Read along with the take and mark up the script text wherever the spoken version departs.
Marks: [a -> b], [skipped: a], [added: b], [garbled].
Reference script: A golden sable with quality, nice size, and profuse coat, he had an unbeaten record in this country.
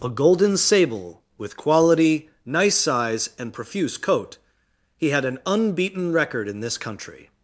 A golden sable with quality, nice size, and profuse coat, he had an unbeaten record in this country.